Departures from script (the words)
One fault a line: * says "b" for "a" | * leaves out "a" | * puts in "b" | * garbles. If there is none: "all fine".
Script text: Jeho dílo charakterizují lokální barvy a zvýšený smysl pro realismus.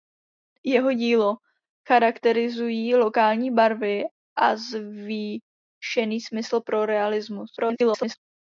* garbles